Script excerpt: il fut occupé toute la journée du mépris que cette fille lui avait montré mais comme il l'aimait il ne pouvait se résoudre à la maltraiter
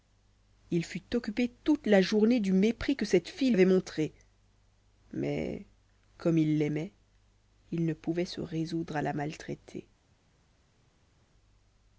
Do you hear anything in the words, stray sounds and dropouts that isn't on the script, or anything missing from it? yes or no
yes